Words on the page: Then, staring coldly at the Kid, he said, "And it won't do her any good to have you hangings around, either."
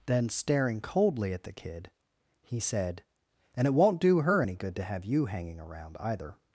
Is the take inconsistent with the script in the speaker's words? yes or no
yes